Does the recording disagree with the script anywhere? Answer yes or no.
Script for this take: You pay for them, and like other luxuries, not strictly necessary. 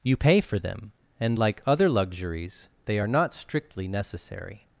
yes